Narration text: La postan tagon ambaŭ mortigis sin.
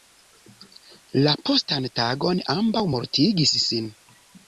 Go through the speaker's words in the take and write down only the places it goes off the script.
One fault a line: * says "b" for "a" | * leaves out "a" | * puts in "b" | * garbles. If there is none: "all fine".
all fine